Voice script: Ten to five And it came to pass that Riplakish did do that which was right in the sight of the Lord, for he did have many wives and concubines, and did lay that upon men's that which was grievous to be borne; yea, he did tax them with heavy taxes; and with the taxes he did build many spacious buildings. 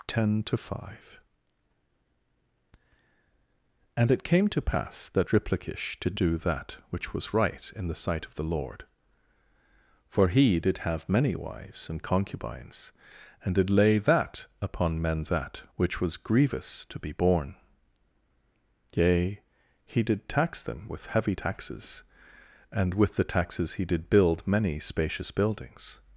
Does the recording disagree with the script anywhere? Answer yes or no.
no